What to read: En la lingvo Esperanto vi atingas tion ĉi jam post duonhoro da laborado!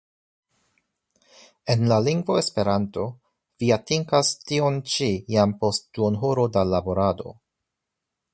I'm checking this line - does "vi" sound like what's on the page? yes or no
yes